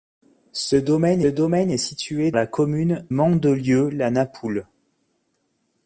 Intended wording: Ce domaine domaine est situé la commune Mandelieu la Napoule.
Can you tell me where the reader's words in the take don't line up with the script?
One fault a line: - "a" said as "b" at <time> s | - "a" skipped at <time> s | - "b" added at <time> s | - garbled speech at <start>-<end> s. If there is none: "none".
none